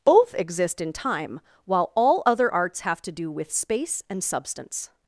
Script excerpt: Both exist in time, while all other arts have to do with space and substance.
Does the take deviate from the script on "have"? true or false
false